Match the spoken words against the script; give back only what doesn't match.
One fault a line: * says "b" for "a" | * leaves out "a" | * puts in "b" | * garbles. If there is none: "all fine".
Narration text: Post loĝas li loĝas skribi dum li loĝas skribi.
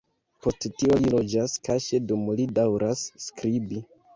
* says "tio" for "loĝas"
* says "kaŝe" for "skribi"
* says "daŭras" for "loĝas"